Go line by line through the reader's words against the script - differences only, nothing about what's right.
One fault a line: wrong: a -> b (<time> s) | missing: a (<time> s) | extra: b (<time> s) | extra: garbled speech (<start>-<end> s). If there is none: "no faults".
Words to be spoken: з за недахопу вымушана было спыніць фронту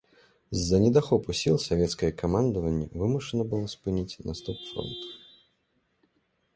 extra: сіл савецкае камандаванне (1.4 s)
extra: наступ (4.3 s)